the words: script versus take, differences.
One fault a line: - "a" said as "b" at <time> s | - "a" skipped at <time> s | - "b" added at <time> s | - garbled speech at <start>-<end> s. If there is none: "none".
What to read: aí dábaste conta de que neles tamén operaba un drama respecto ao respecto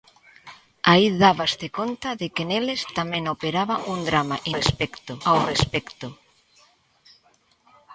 none